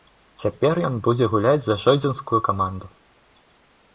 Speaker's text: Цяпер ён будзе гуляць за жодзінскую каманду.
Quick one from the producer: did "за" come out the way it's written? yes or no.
yes